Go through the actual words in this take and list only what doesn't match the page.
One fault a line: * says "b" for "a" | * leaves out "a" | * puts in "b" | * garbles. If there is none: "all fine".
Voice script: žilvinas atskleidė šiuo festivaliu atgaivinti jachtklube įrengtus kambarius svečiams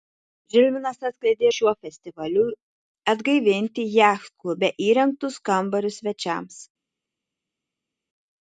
all fine